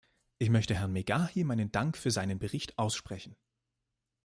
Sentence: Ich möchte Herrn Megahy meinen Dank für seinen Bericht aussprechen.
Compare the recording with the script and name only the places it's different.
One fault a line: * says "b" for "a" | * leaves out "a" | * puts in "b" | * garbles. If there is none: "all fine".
all fine